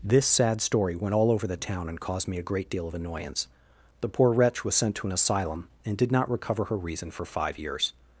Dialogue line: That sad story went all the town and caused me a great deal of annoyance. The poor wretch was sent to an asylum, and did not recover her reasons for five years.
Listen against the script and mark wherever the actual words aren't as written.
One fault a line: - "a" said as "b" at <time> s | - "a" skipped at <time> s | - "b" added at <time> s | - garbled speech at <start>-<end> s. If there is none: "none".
- "That" said as "This" at 0.0 s
- "over" added at 1.3 s
- "reasons" said as "reason" at 6.8 s